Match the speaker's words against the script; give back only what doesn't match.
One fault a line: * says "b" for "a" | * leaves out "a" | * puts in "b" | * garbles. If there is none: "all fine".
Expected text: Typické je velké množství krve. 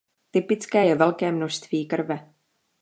all fine